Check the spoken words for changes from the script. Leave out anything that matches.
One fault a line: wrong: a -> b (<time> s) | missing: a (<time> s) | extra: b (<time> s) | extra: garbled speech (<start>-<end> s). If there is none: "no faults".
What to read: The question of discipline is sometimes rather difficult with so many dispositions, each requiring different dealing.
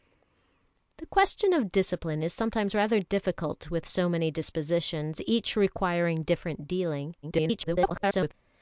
extra: garbled speech (7.2-8.3 s)